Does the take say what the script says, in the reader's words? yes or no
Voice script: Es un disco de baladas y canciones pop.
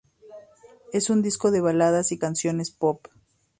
yes